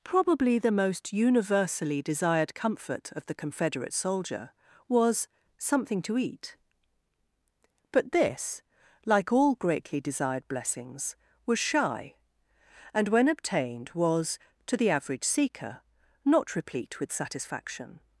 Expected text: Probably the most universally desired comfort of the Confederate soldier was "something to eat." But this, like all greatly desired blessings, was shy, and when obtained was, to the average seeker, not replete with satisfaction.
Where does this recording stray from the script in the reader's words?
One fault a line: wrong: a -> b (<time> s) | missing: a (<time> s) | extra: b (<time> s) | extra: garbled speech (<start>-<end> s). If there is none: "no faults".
no faults